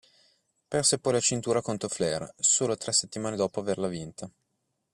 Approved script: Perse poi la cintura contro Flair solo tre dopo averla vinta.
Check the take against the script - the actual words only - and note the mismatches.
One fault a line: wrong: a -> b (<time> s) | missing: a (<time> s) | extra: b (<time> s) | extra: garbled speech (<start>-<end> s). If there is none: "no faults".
extra: settimane (2.9 s)